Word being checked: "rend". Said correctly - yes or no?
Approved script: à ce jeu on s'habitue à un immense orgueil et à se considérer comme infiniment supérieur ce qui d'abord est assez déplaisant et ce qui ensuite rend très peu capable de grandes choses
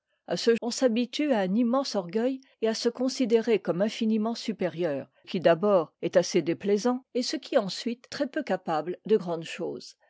no